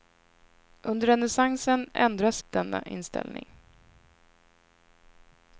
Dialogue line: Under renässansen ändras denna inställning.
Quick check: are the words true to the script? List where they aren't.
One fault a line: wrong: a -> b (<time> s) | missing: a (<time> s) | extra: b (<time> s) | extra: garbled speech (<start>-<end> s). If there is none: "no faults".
no faults